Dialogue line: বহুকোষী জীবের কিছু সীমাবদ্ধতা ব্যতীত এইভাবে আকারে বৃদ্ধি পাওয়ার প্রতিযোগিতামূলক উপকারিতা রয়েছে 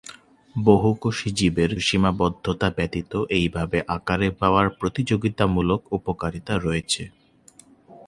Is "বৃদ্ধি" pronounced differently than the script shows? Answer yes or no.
yes